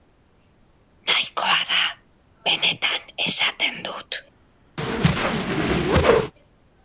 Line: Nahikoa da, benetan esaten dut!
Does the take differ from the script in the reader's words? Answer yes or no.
no